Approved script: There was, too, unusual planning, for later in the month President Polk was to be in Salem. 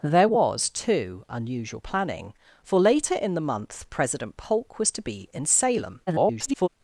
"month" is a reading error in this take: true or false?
false